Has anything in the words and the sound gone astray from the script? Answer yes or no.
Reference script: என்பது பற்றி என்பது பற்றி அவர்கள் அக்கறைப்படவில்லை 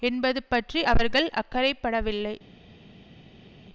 yes